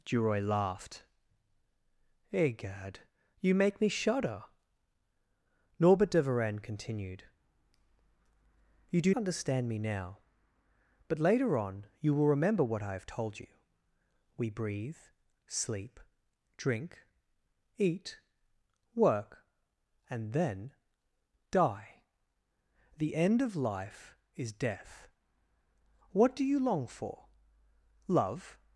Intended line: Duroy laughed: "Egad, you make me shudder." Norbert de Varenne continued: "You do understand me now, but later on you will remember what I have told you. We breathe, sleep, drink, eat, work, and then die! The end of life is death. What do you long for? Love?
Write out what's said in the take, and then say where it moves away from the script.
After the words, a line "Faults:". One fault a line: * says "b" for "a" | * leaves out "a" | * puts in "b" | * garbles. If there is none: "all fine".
Duroy laughed: "Egad, you make me shudder." Norbert de Varenne continued: "You do understand me now, but later on you will remember what I have told you. We breathe, sleep, drink, eat, work, and then die! The end of life is death. What do you long for? Love?
Faults:
all fine